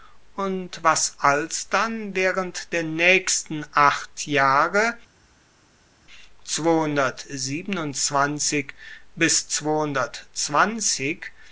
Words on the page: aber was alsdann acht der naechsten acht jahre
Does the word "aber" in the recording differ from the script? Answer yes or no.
yes